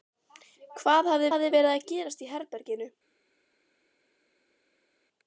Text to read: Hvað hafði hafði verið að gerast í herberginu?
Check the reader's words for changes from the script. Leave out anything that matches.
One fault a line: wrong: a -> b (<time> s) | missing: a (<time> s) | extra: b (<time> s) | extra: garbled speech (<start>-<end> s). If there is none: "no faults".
no faults